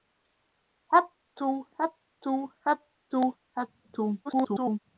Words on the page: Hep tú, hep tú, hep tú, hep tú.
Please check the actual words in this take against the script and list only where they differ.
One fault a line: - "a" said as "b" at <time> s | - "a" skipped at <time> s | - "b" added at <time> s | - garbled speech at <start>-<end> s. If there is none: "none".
- garbled speech at 4.2-4.8 s